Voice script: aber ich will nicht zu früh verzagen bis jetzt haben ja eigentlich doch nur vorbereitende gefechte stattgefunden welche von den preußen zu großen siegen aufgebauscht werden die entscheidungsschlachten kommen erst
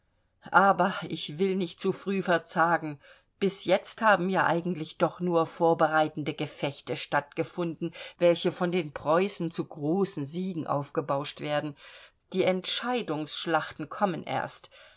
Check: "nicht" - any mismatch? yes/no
no